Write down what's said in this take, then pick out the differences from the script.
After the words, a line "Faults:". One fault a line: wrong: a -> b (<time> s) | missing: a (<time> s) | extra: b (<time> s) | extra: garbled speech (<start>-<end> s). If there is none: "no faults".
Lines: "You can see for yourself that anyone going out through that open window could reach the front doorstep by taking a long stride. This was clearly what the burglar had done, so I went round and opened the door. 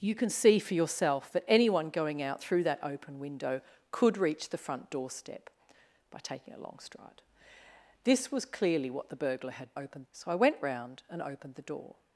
"You can see for yourself that anyone going out through that open window could reach the front doorstep by taking a long stride. This was clearly what the burglar had opened, so I went round and opened the door.
Faults:
wrong: done -> opened (9.7 s)